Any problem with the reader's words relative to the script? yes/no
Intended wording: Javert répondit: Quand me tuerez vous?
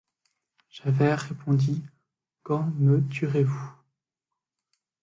no